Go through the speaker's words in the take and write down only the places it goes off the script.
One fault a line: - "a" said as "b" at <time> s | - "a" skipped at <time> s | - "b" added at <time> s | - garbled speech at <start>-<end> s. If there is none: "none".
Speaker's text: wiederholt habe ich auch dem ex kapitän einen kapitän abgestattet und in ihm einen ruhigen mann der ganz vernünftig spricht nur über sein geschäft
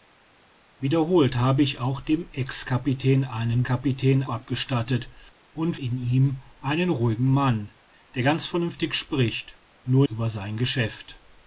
none